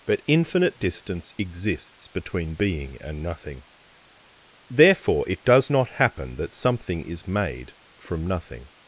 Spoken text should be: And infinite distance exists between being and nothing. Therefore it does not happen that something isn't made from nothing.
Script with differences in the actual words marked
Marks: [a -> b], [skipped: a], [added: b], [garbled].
[And -> But] infinite distance exists between being and nothing. Therefore it does not happen that something [isn't -> is] made from nothing.